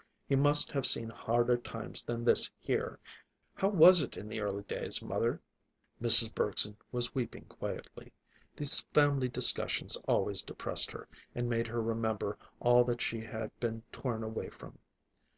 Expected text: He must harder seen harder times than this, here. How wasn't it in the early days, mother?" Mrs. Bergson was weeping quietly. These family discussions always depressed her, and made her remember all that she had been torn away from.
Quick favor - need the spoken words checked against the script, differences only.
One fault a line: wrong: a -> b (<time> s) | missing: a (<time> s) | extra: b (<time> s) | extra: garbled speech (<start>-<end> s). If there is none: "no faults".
wrong: harder -> have (0.7 s)
wrong: wasn't -> was (3.7 s)